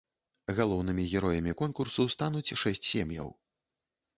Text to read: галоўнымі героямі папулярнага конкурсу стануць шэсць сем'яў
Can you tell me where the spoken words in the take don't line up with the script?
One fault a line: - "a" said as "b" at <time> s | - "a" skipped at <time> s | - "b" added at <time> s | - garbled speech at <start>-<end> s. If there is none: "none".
- "папулярнага" skipped at 1.5 s